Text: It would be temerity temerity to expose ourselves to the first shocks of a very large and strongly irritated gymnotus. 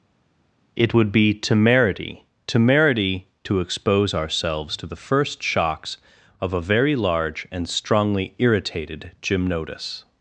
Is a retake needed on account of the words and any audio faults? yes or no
no